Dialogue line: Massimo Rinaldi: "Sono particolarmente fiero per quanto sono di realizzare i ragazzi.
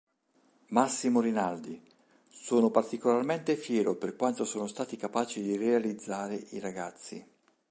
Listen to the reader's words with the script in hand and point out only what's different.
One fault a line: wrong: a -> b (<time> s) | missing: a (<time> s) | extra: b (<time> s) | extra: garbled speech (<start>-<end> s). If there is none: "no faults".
extra: stati capaci (4.7 s)